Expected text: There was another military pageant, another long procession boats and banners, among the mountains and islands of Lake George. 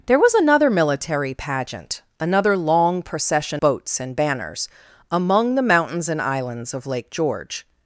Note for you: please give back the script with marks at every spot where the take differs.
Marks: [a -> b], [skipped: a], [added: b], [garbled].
There was another military pageant, another long procession boats and banners, among the mountains and islands of Lake George.